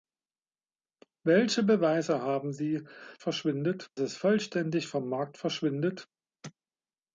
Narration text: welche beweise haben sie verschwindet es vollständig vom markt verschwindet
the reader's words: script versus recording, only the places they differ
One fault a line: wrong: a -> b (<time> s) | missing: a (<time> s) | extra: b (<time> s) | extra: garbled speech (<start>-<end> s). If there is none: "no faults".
no faults